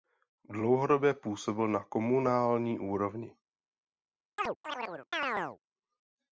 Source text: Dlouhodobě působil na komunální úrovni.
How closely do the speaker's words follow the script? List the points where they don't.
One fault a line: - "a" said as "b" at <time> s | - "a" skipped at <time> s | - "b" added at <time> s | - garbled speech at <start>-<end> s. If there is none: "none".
none